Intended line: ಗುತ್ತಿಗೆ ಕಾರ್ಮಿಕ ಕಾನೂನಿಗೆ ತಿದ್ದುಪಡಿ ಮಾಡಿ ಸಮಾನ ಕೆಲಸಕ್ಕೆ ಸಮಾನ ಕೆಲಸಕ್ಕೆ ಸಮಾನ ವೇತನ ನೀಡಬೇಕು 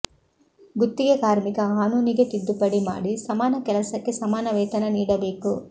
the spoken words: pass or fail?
fail